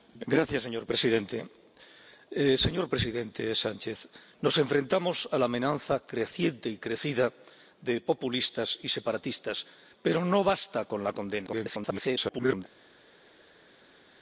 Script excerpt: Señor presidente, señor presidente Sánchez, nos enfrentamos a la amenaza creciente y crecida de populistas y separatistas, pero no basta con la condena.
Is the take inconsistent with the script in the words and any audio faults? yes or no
yes